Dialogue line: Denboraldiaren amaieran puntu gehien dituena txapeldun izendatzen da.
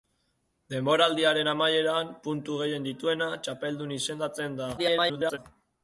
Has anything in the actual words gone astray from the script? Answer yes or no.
yes